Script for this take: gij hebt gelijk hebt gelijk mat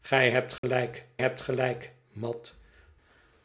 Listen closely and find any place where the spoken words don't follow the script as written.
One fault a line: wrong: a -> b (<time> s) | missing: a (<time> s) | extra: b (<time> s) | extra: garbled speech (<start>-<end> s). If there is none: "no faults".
no faults